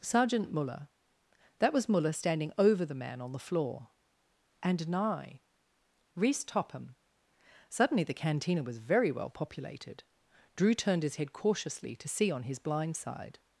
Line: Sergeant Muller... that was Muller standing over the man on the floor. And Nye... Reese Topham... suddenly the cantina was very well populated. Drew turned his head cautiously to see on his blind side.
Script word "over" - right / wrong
right